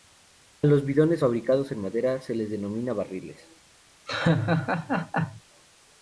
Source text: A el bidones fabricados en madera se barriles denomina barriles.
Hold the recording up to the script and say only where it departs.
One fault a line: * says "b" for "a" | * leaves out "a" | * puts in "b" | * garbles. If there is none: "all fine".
* says "los" for "el"
* says "les" for "barriles"